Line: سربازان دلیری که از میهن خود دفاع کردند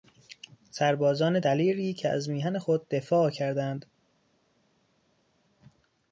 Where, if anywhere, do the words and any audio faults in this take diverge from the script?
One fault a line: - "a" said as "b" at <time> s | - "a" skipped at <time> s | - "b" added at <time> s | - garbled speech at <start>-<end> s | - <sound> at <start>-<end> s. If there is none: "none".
none